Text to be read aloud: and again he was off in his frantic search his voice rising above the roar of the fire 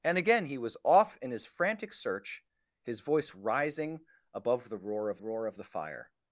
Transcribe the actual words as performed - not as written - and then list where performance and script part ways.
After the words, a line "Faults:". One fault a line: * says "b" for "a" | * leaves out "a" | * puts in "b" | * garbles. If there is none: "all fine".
and again he was off in his frantic search his voice rising above the roar of roar of the fire
Faults:
* puts in "roar of"